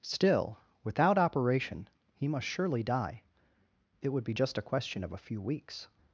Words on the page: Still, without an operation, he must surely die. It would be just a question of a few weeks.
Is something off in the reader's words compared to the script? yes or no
yes